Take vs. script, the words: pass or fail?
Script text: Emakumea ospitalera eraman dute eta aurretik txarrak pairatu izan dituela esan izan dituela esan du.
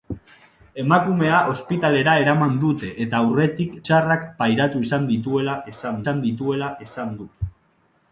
pass